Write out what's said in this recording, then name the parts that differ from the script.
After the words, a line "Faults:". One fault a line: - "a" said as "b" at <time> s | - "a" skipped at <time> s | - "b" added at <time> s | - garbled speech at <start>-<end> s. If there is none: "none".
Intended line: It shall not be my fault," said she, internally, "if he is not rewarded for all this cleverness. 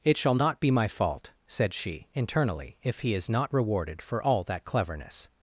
It shall not be my fault," said she, internally, "if he is not rewarded for all that cleverness.
Faults:
- "this" said as "that" at 4.4 s